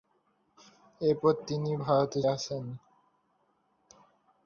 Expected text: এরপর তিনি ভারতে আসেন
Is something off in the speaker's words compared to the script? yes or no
no